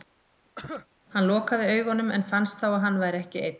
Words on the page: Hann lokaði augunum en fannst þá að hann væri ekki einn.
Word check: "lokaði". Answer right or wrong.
right